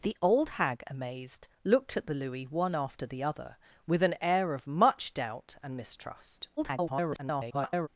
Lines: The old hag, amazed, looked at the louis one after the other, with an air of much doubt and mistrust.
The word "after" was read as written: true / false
true